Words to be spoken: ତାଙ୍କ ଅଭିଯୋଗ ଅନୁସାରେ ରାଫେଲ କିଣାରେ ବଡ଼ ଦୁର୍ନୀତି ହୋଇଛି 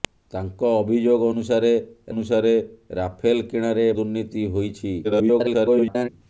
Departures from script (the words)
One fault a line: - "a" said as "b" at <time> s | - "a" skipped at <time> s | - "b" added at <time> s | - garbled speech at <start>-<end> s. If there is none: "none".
- "ଅନୁସାରେ" added at 2.1 s
- "ବଡ଼" skipped at 3.9 s
- garbled speech at 5.0-6.1 s